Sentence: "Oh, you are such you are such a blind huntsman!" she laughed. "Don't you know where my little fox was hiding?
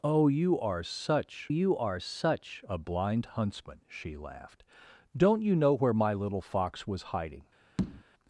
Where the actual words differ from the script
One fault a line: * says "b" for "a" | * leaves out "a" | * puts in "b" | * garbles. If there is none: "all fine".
all fine